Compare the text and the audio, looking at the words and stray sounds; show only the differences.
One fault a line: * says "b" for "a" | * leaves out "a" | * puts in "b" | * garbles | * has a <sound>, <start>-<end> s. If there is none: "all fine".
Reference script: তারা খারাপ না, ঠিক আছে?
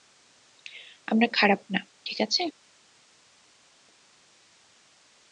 * says "আমরা" for "তারা"